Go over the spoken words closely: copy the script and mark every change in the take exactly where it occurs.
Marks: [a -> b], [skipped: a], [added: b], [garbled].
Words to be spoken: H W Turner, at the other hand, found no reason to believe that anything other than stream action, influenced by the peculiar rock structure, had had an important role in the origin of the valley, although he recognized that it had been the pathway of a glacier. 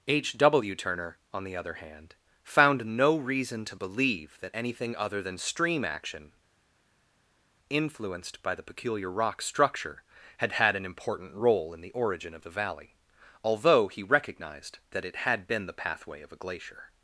H W Turner, [at -> on] the other hand, found no reason to believe that anything other than stream action, influenced by the peculiar rock structure, had had an important role in the origin of the valley, although he recognized that it had been the pathway of a glacier.